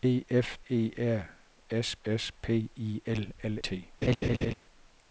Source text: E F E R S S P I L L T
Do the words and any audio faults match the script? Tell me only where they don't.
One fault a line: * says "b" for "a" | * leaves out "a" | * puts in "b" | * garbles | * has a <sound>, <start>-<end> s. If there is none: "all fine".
* has a laugh, 4.0-4.5 s